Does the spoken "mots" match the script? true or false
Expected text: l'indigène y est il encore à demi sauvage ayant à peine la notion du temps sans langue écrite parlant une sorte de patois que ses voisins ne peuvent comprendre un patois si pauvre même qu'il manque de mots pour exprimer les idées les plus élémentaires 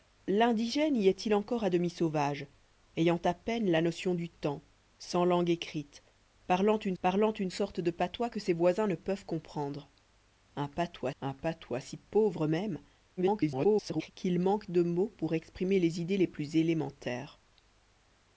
true